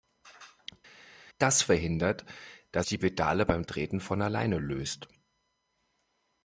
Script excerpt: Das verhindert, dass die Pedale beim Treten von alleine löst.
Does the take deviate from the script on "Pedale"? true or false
false